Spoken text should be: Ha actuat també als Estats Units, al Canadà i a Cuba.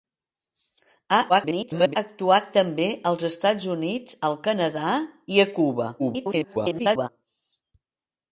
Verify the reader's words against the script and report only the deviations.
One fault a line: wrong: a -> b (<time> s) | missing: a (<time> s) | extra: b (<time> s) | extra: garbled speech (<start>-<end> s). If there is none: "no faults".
extra: garbled speech (1.3-2.0 s)
extra: garbled speech (6.0-7.1 s)